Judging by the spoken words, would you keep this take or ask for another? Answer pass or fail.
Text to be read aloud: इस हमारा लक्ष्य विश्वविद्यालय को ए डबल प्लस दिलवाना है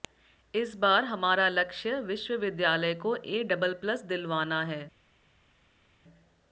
fail